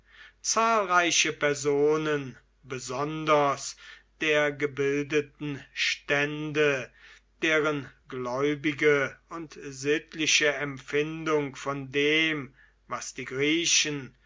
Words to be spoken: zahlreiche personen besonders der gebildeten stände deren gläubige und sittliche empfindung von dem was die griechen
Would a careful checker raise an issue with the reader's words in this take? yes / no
no